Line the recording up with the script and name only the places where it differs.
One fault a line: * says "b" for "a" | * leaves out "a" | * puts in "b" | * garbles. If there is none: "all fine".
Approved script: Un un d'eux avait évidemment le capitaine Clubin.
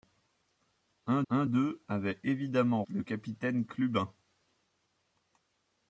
all fine